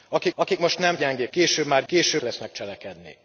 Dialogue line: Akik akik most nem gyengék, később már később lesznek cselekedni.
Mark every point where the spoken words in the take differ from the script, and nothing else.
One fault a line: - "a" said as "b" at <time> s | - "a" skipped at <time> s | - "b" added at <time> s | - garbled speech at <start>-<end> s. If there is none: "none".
none